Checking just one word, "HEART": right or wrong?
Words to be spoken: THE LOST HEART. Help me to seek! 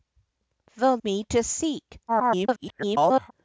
wrong